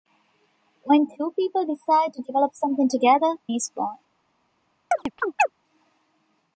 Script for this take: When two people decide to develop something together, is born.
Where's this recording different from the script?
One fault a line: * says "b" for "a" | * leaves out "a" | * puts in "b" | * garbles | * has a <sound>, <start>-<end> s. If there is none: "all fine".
* has a chirp, 4.9-5.5 s